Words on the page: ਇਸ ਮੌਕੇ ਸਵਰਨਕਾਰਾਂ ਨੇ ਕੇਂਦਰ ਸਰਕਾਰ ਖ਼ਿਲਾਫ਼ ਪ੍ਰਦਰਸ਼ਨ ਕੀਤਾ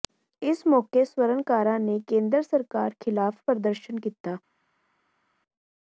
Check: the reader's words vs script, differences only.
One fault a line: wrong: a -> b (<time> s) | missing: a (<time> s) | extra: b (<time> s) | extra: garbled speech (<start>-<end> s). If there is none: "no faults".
no faults